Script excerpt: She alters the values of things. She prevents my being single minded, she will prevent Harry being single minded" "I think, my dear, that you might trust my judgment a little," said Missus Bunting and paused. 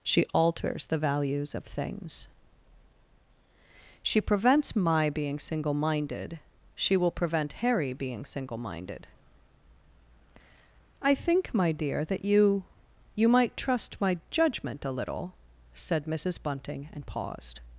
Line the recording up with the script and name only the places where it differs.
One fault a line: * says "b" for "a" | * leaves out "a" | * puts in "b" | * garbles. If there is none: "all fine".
* puts in "you"